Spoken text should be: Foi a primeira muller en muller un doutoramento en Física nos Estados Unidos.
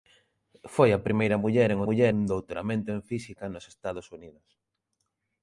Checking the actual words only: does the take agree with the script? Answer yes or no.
yes